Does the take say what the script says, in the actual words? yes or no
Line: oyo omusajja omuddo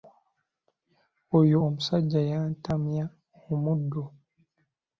no